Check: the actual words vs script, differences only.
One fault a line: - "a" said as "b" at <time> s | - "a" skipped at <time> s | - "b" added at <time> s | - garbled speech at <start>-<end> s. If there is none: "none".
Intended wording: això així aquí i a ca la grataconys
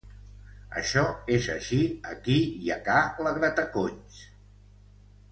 - "és" added at 1.4 s